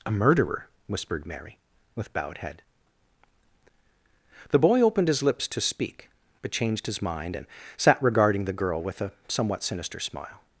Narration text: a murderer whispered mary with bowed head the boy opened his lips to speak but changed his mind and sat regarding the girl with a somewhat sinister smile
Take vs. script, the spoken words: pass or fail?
pass